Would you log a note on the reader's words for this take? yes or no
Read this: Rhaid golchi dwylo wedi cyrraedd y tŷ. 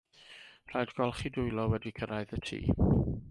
no